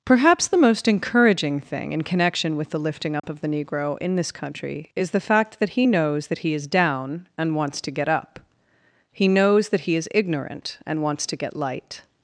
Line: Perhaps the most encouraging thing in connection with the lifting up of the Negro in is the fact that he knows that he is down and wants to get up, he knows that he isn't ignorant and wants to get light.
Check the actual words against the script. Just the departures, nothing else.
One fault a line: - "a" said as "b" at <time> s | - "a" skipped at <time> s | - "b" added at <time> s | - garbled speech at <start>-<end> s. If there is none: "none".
- "this country" added at 4.2 s
- "isn't" said as "is" at 10.0 s